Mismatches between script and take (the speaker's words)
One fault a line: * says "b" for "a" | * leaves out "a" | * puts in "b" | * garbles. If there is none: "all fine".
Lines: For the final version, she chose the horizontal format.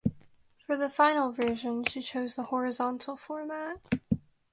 all fine